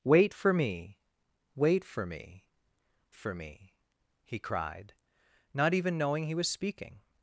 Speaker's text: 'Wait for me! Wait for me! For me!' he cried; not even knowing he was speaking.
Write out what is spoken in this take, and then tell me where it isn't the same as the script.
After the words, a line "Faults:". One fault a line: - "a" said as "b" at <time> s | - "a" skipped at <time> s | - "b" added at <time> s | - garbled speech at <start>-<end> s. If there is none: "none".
'Wait for me! Wait for me! For me!' he cried; not even knowing he was speaking.
Faults:
none